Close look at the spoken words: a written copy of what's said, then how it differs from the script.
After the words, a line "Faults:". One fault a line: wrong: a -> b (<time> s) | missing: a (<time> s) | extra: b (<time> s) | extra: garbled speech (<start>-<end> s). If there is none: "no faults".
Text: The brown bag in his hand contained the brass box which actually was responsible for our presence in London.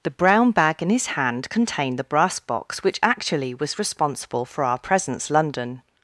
The brown bag in his hand contained the brass box which actually was responsible for our presence London.
Faults:
missing: in (5.3 s)